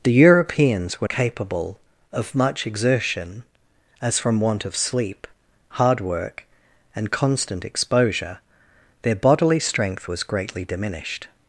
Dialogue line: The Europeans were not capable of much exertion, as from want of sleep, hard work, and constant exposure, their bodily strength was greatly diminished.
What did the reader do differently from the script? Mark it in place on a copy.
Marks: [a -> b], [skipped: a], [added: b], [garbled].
The Europeans were [skipped: not] capable of much exertion, as from want of sleep, hard work, and constant exposure, their bodily strength was greatly diminished.